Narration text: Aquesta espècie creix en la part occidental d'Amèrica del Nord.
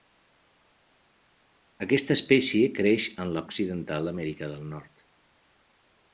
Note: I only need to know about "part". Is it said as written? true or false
false